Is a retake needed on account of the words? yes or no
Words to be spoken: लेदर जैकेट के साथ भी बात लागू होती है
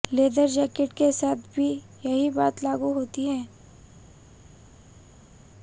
yes